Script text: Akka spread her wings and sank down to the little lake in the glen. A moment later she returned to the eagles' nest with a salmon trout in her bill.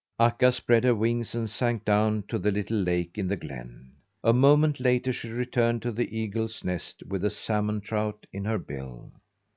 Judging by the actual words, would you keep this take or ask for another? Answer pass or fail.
pass